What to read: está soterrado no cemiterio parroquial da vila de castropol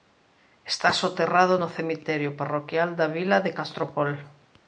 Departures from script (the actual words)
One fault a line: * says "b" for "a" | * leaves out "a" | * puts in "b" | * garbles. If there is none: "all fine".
all fine